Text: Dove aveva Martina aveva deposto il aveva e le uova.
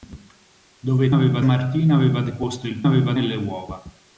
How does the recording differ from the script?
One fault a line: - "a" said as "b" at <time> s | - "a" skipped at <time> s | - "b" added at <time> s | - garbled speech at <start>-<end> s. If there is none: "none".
none